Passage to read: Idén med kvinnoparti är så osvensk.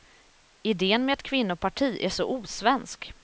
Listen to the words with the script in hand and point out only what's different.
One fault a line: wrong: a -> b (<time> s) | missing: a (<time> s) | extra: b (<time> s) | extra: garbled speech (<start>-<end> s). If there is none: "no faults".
extra: ett (1.1 s)